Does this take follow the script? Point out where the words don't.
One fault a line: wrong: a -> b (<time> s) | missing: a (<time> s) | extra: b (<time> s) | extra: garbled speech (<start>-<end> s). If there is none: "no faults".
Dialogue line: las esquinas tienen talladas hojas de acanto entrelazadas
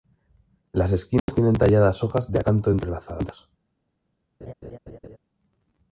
no faults